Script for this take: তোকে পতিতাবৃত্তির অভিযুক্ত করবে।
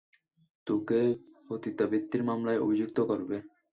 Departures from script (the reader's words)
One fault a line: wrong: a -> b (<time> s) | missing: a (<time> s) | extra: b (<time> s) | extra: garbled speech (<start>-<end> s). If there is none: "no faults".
extra: মামলায় (2.2 s)